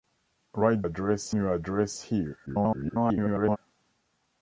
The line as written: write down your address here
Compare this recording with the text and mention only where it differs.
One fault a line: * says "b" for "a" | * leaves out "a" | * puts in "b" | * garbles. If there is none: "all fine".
* says "address" for "down"
* garbles